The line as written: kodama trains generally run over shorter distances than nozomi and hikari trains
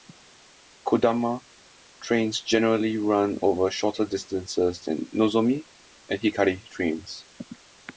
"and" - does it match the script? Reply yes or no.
yes